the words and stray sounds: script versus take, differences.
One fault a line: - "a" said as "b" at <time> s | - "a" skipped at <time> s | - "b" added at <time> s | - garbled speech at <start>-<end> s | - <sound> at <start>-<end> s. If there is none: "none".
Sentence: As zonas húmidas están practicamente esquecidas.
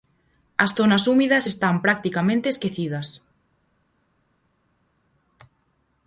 none